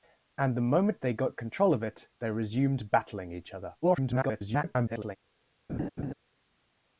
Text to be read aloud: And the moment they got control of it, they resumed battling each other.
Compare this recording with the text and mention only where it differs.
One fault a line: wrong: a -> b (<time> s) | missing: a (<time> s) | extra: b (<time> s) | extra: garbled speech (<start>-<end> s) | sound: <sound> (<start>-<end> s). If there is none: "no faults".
extra: garbled speech (3.8-5.2 s)
sound: laugh (5.7-6.1 s)